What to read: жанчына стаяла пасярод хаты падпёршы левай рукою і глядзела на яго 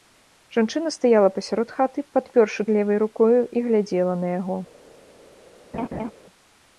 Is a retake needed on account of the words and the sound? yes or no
yes